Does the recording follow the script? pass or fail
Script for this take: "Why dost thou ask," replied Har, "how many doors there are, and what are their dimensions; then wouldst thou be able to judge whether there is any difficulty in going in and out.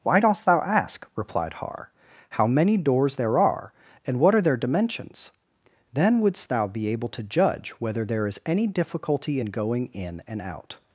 pass